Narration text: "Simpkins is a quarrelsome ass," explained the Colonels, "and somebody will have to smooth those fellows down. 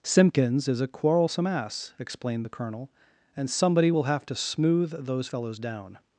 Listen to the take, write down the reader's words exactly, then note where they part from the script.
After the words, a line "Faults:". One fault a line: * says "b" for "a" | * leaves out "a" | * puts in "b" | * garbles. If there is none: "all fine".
"Simpkins is a quarrelsome ass," explained the Colonel, "and somebody will have to smooth those fellows down.
Faults:
* says "Colonel" for "Colonels"